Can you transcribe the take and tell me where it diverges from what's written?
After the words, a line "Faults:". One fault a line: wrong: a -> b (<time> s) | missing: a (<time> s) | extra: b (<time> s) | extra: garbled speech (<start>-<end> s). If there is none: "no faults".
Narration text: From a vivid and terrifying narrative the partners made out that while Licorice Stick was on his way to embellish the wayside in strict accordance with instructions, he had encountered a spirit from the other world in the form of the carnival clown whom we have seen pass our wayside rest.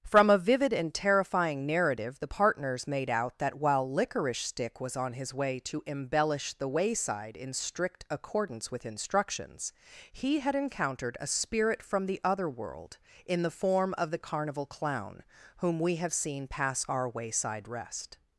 From a vivid and terrifying narrative the partners made out that while Licorice Stick was on his way to embellish the wayside in strict accordance with instructions, he had encountered a spirit from the other world in the form of the carnival clown whom we have seen pass our wayside rest.
Faults:
no faults